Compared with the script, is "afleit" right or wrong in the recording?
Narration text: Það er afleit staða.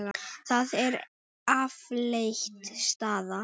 right